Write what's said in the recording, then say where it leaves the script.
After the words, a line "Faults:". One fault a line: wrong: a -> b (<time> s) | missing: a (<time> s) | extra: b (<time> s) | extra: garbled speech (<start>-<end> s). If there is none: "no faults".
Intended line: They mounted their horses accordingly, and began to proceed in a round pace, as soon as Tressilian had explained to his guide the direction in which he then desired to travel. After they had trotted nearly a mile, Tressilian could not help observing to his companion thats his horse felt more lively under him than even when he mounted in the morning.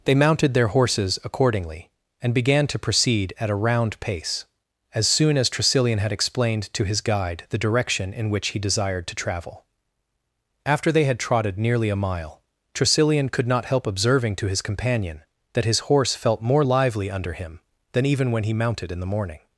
They mounted their horses accordingly, and began to proceed at a round pace, as soon as Tressilian had explained to his guide the direction in which he desired to travel. After they had trotted nearly a mile, Tressilian could not help observing to his companion that his horse felt more lively under him than even when he mounted in the morning.
Faults:
wrong: in -> at (3.4 s)
missing: then (8.6 s)
wrong: thats -> that (15.5 s)